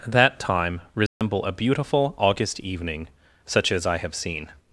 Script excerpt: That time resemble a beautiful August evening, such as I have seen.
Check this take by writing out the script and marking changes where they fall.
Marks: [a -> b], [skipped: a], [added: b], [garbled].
That time resemble a beautiful August evening, such as I have seen.